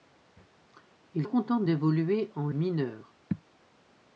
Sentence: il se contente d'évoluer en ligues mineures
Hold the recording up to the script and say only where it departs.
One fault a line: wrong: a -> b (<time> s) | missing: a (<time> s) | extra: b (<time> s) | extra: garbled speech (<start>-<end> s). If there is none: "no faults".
missing: se (1.3 s)
missing: ligues (2.5 s)